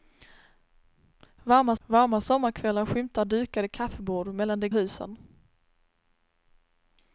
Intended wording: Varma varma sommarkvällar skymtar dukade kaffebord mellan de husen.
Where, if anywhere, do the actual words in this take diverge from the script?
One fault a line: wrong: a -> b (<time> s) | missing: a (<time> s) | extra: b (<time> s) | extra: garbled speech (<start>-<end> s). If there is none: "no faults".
no faults